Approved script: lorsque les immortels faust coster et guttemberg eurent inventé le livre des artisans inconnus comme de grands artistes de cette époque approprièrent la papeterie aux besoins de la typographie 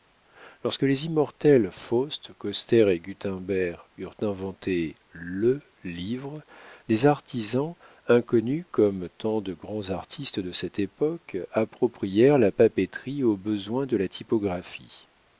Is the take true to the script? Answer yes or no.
no